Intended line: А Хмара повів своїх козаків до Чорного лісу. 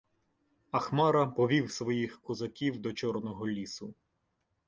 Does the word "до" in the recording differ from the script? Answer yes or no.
no